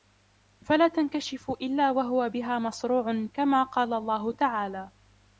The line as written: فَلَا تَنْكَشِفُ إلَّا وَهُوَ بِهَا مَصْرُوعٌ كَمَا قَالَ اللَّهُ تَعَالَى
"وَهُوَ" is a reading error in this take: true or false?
false